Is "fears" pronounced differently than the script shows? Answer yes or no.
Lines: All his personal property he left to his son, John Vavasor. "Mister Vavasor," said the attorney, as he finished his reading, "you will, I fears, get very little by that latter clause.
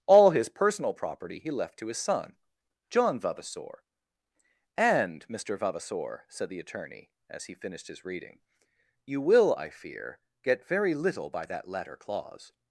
yes